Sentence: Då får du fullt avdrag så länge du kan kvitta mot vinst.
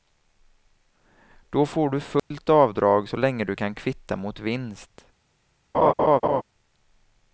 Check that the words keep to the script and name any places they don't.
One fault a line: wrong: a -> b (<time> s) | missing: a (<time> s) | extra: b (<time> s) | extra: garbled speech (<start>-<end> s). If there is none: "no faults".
no faults